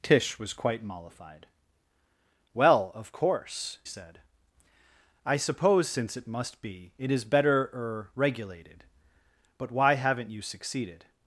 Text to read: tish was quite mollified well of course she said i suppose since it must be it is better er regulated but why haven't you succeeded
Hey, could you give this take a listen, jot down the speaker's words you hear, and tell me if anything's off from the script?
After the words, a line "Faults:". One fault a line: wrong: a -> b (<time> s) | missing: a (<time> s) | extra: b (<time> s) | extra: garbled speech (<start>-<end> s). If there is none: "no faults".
tish was quite mollified well of course said i suppose since it must be it is better er regulated but why haven't you succeeded
Faults:
missing: she (3.8 s)